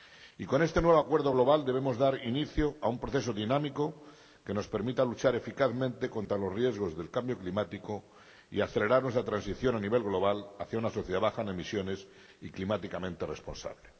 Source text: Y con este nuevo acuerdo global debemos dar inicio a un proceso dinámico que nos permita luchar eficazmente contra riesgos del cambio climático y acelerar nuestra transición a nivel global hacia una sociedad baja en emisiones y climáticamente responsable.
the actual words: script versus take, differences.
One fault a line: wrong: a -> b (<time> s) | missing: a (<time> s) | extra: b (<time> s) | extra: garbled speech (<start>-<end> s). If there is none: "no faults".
extra: los (6.4 s)